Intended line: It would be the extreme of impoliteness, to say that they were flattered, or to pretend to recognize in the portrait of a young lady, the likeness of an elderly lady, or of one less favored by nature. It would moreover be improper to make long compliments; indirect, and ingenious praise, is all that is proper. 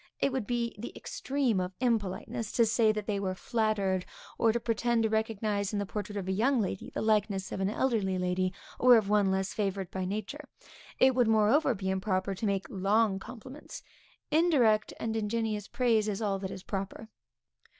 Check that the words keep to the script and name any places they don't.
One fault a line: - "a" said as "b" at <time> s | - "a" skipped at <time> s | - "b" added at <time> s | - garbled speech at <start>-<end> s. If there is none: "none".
none